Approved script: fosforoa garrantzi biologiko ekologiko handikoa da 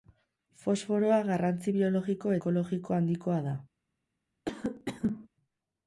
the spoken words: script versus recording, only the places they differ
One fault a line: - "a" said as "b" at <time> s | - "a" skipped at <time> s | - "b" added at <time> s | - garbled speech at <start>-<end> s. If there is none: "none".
none